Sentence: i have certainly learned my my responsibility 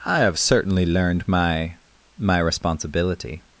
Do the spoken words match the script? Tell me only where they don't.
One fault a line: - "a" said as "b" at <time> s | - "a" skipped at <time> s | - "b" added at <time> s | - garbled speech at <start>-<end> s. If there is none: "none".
none